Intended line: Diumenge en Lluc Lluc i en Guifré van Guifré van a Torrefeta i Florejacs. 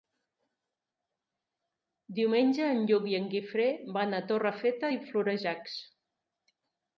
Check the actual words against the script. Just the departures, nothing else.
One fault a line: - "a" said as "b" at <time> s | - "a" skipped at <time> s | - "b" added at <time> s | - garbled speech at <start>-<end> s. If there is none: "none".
- "Lluc" skipped at 3.0 s
- "Guifré van" skipped at 4.2 s